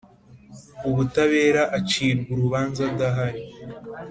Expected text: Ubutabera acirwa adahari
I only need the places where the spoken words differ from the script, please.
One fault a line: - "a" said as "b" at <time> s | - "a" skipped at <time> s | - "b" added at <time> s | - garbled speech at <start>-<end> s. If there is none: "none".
- "urubanza" added at 2.4 s